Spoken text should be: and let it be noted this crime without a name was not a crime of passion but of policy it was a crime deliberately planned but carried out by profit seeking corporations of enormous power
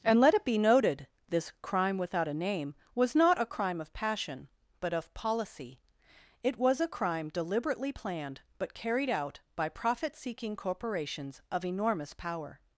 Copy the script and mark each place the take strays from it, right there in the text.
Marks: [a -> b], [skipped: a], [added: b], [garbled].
and let it be noted this crime without a name was not a crime of passion but of policy it was a crime deliberately planned but carried out by profit seeking corporations of enormous power